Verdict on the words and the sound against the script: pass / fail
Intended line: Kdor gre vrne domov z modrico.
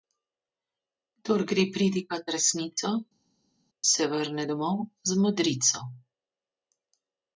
fail